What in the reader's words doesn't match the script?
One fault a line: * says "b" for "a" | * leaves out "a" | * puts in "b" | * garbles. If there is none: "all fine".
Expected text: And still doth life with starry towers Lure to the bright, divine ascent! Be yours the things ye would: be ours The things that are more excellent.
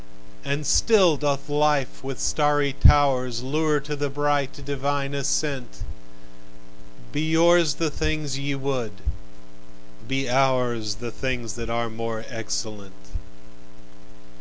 all fine